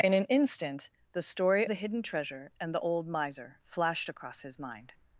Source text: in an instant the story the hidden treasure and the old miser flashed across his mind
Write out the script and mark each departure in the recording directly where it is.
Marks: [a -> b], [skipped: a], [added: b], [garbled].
in an instant the story the hidden treasure and the old miser flashed across his mind